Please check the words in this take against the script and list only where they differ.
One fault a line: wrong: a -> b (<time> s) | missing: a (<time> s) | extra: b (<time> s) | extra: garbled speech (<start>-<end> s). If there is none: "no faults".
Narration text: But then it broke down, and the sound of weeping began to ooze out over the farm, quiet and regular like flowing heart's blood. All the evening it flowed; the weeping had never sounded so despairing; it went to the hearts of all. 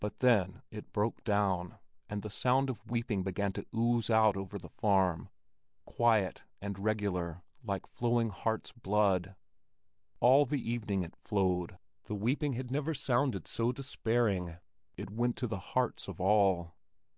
no faults